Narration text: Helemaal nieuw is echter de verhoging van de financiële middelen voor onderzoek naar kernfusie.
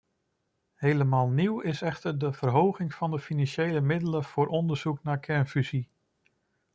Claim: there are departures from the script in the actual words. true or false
false